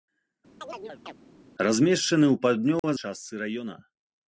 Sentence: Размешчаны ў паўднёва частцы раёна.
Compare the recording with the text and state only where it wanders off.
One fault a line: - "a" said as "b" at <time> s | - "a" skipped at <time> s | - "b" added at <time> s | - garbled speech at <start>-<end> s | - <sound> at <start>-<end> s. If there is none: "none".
- chirp at 0.6-1.1 s
- dropout at 2.8-2.8 s